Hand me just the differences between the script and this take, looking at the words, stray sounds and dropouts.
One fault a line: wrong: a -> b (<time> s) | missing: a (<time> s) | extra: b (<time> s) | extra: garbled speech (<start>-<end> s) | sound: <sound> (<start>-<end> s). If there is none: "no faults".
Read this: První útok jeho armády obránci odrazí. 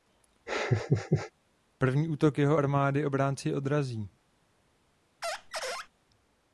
sound: laugh (0.5-1.3 s)
sound: squeak (5.2-5.9 s)